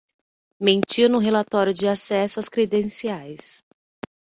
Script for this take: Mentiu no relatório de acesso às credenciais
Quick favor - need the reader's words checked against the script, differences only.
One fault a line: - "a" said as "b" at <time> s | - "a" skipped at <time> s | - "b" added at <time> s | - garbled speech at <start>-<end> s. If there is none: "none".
none